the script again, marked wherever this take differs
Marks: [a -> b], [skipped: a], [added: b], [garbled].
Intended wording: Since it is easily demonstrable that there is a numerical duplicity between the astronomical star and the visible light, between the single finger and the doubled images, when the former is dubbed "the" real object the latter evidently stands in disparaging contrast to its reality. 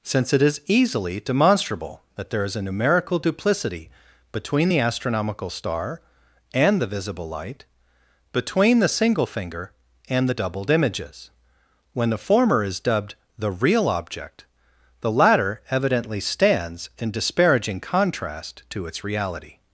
Since it is easily demonstrable that there is a numerical duplicity between the astronomical star and the visible light, between the single finger and the doubled images, when the former is dubbed "the" real object the latter evidently stands in disparaging contrast to its reality.